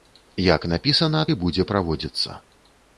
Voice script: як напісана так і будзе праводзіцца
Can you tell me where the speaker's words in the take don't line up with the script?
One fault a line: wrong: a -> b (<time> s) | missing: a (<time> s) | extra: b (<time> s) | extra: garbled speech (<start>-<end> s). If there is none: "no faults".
missing: так (1.2 s)